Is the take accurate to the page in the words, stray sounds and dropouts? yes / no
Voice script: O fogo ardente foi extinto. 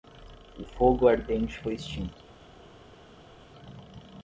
yes